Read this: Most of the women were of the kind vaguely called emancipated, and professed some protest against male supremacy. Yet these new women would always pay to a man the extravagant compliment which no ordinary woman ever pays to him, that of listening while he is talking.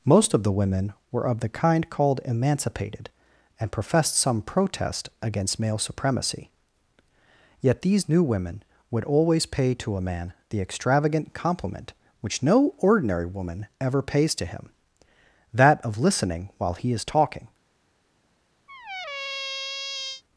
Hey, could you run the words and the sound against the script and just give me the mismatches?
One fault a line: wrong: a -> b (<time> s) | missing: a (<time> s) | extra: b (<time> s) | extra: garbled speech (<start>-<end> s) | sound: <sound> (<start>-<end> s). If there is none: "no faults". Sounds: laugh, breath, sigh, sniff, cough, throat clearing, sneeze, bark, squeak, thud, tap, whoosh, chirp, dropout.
missing: vaguely (1.9 s)
sound: squeak (18.7-20.2 s)